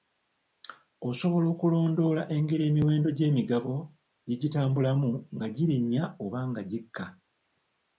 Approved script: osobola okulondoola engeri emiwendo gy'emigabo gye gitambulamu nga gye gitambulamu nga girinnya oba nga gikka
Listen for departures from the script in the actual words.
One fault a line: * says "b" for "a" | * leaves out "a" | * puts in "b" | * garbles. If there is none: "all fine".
* leaves out "gye gitambulamu nga"